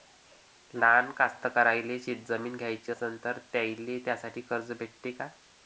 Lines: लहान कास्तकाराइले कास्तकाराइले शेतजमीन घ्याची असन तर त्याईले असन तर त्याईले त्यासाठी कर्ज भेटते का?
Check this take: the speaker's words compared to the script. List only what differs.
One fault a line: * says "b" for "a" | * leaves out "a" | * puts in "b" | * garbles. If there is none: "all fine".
* leaves out "कास्तकाराइले"
* leaves out "असन तर त्याईले"